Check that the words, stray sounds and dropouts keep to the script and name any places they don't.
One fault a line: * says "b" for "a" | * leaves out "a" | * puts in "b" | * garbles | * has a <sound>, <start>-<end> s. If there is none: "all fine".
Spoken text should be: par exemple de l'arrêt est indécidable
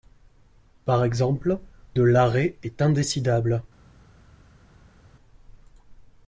all fine